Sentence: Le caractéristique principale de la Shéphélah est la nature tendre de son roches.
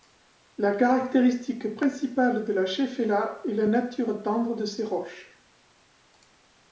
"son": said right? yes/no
no